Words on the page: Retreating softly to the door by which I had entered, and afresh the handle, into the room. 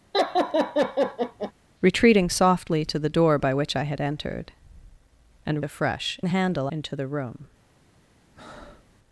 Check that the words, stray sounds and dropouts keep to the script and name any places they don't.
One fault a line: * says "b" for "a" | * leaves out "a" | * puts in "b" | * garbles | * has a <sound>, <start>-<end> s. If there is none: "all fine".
* has a laugh, 0.1-1.5 s
* has a breath, 8.4-8.9 s